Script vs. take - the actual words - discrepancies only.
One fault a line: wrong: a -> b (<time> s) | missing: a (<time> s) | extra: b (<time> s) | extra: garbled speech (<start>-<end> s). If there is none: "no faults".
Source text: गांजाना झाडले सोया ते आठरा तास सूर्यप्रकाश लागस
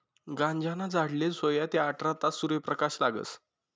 no faults